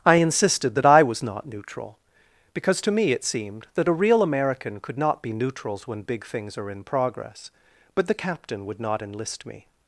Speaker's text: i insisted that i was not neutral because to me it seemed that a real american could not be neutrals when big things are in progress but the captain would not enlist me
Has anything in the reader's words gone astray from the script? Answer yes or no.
no